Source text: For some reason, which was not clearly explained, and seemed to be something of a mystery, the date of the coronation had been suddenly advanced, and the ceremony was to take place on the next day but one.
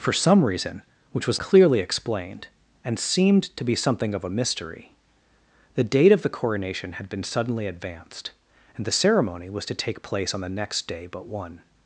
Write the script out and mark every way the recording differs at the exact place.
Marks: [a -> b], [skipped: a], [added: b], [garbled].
For some reason, which was [skipped: not] clearly explained, and seemed to be something of a mystery, the date of the coronation had been suddenly advanced, and the ceremony was to take place on the next day but one.